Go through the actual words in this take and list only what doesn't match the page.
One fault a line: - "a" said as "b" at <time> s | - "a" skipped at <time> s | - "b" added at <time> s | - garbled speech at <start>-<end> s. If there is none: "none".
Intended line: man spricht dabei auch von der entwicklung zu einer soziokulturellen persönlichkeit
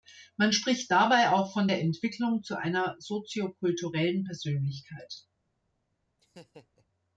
none